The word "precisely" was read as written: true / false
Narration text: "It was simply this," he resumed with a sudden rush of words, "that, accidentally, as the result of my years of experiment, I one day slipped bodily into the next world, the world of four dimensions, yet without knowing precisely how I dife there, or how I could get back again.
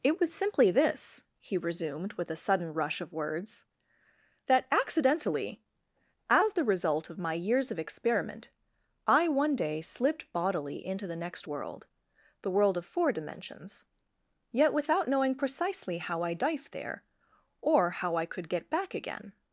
true